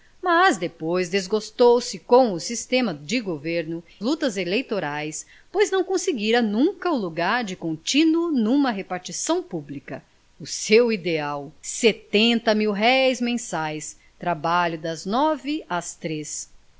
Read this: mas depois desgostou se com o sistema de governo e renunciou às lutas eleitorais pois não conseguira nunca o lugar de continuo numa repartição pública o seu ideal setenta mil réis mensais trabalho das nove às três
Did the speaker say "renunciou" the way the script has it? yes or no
no